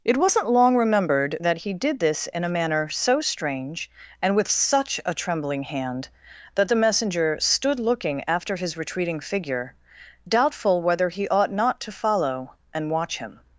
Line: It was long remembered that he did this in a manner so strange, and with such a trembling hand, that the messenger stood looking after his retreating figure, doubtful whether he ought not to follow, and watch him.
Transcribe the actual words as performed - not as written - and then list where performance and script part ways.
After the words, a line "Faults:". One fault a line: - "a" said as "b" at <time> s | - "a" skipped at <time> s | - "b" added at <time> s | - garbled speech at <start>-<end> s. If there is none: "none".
It wasn't long remembered that he did this in a manner so strange, and with such a trembling hand, that the messenger stood looking after his retreating figure, doubtful whether he ought not to follow, and watch him.
Faults:
- "was" said as "wasn't" at 0.2 s